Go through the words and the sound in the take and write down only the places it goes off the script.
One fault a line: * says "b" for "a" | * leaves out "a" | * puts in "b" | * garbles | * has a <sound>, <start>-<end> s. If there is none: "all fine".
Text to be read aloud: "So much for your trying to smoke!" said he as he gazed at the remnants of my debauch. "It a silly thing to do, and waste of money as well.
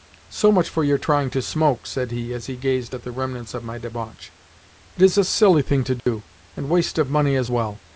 * puts in "is"
* has a dropout, 6.0-6.1 s